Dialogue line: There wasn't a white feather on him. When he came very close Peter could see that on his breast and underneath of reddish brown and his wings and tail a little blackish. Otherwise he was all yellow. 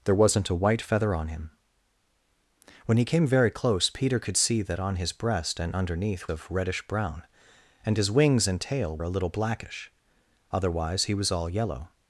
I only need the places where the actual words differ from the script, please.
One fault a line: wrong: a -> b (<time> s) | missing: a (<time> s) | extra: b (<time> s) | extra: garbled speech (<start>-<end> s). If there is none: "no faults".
no faults